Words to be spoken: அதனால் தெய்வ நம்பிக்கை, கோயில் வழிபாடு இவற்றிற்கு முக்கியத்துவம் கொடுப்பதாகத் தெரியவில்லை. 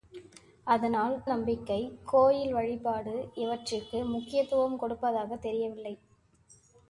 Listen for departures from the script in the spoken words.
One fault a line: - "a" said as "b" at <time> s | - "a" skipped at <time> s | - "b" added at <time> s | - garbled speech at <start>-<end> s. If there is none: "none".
- "தெய்வ" skipped at 1.2 s